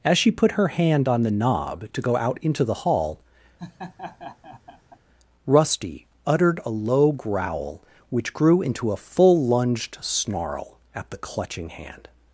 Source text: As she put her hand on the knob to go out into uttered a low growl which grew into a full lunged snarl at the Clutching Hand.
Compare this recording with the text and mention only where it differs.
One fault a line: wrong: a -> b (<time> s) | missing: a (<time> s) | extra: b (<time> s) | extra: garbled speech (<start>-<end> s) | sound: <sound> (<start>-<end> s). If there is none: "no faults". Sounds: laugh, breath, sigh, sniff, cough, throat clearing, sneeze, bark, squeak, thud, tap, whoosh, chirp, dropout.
extra: the hall Rusty (2.6 s)
sound: laugh (3.6-5.0 s)